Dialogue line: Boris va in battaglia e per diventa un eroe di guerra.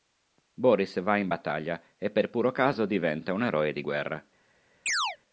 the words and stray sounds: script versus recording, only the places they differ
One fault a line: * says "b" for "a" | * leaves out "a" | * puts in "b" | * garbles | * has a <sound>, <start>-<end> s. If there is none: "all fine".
* puts in "puro caso"
* has a chirp, 4.9-5.2 s